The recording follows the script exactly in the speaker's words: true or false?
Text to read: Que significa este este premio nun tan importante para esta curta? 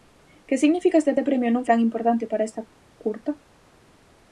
true